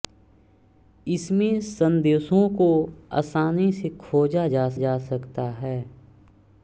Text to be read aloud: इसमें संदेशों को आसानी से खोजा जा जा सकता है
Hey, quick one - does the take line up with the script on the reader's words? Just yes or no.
yes